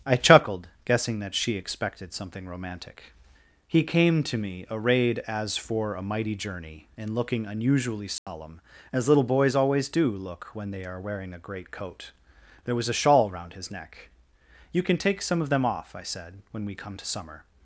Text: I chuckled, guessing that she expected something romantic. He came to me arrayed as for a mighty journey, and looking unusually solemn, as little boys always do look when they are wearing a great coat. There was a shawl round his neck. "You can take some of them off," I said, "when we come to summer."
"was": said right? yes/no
yes